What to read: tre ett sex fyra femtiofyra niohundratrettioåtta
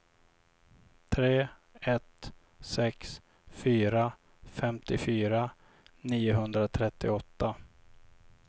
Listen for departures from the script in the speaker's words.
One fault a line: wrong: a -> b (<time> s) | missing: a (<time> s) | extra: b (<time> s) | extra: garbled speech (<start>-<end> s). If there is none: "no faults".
no faults